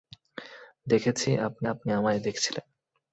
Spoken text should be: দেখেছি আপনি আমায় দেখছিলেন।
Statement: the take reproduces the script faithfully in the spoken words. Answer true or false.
false